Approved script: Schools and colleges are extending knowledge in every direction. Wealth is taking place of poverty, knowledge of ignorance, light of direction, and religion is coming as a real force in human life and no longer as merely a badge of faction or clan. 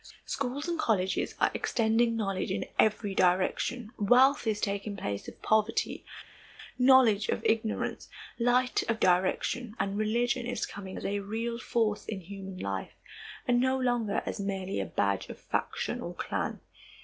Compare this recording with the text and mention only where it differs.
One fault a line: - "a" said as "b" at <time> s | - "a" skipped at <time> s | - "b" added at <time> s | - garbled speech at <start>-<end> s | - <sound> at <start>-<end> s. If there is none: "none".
none